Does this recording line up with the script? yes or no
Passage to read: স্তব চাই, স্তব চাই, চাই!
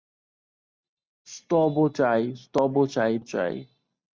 yes